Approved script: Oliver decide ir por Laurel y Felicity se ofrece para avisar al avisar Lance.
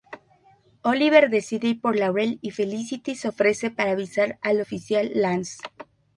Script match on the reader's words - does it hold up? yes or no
no